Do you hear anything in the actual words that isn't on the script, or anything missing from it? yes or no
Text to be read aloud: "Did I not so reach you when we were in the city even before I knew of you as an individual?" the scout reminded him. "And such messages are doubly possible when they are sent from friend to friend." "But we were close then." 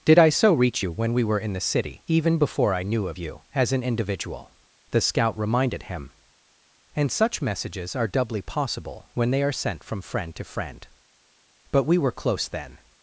yes